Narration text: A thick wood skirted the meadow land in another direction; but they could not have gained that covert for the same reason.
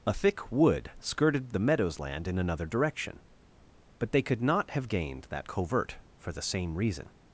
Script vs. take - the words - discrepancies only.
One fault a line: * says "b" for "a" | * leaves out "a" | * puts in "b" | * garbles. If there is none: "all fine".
* says "meadows" for "meadow"